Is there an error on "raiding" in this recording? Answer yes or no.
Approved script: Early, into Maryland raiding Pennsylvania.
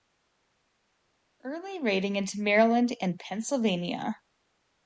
yes